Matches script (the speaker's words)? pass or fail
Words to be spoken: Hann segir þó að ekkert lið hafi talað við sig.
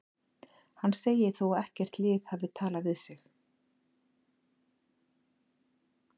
pass